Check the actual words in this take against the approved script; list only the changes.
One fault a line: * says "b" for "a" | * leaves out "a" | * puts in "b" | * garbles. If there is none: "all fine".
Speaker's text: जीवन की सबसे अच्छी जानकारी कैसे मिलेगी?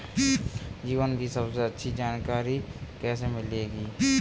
all fine